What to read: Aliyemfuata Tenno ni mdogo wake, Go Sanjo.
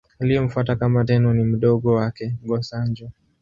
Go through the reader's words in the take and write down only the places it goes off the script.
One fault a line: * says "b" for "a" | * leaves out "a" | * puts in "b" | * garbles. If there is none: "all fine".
* puts in "kama"